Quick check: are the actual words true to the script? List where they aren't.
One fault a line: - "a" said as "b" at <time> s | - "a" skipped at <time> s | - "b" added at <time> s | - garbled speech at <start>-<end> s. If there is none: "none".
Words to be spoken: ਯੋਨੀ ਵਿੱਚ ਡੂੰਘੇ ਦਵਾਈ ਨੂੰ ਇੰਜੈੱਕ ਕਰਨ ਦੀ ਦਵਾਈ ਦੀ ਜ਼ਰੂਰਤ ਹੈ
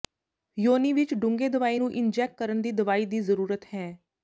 none